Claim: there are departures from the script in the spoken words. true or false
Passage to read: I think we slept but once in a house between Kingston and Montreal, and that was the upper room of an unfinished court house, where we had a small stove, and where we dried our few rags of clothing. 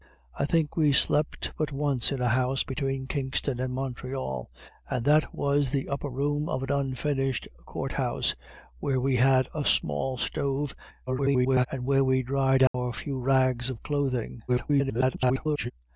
true